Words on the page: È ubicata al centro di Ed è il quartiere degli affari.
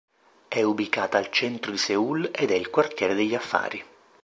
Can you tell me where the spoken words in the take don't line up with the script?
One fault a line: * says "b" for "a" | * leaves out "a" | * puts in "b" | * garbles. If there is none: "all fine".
* puts in "Seul"